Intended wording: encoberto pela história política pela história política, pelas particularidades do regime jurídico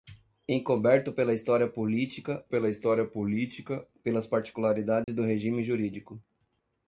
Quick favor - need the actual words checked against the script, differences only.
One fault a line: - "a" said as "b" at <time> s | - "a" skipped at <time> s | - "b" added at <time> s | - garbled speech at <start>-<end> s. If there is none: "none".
none